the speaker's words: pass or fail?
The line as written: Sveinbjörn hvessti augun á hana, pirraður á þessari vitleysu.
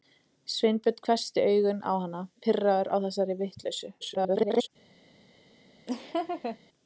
fail